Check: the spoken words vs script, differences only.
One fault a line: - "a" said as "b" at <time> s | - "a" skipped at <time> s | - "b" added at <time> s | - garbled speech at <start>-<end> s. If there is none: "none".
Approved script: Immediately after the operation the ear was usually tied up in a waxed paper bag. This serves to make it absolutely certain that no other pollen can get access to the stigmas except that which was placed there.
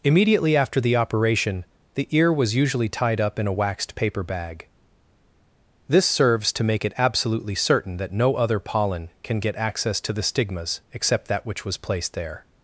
none